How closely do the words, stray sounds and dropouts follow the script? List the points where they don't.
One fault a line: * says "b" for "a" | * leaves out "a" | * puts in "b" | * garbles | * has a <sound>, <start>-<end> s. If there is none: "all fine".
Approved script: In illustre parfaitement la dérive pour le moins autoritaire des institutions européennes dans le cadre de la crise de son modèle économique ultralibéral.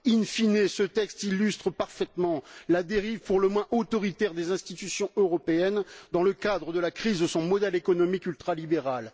* puts in "fine ce texte"